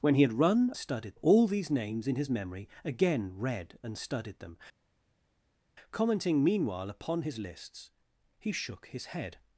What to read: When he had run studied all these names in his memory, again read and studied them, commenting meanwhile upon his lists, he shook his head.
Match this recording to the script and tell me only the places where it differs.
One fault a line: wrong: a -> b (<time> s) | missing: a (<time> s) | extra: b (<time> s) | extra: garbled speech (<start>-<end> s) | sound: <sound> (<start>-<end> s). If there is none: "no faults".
no faults